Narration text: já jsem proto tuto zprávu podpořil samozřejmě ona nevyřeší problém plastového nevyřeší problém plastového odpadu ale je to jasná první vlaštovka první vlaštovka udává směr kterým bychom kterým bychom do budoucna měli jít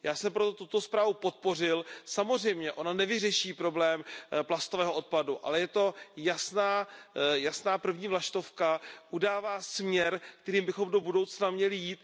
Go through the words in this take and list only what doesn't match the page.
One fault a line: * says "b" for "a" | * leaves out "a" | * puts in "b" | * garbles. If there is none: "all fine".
* leaves out "nevyřeší problém plastového"
* leaves out "první vlaštovka"
* leaves out "kterým bychom"